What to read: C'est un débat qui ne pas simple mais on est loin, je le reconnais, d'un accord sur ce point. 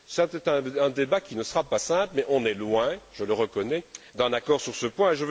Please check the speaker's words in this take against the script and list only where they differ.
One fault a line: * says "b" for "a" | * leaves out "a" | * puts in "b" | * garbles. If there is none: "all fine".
* puts in "sera"